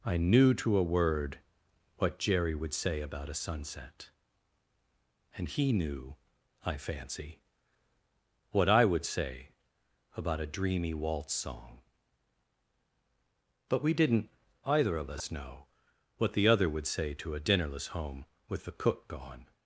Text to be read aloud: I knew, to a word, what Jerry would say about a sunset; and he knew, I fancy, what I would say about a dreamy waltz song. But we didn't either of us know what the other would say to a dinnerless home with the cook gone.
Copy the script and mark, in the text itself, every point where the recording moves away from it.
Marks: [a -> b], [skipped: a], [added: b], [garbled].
I knew, to a word, what Jerry would say about a sunset; and he knew, I fancy, what I would say about a dreamy waltz song. But we didn't either of us know what the other would say to a dinnerless home with the cook gone.